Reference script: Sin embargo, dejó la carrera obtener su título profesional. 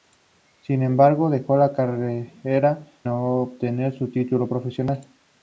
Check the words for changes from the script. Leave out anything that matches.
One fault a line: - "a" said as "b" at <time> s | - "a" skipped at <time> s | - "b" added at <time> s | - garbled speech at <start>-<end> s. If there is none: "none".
none